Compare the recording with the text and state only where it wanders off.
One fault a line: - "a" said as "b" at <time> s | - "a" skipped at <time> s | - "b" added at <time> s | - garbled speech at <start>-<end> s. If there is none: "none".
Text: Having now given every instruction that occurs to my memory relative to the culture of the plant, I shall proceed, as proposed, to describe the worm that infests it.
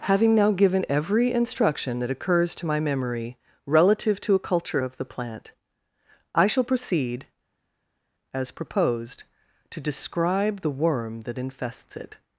- "the" said as "a" at 4.3 s